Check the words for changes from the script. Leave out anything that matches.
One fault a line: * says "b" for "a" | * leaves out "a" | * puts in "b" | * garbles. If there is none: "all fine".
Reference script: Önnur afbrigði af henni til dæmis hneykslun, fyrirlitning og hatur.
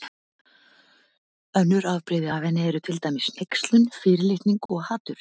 * puts in "eru"